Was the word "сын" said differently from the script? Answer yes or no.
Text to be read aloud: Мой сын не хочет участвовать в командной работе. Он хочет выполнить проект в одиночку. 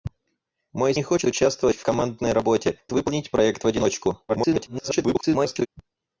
yes